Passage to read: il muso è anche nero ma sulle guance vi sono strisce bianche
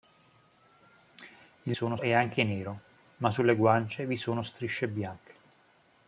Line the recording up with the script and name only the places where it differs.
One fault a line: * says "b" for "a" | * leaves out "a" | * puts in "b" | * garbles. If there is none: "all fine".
* says "sono" for "muso"